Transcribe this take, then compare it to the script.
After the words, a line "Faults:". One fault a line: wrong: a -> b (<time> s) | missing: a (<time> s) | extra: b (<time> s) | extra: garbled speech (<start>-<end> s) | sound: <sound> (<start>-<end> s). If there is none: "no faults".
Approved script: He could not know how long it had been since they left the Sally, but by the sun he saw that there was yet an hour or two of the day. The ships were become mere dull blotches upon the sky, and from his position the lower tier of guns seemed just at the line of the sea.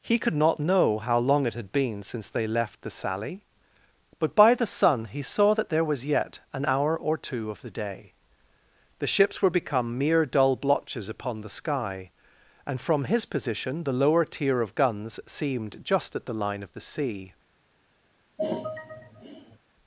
He could not know how long it had been since they left the Sally, but by the sun he saw that there was yet an hour or two of the day. The ships were become mere dull blotches upon the sky, and from his position the lower tier of guns seemed just at the line of the sea.
Faults:
sound: sigh (18.4-19.6 s)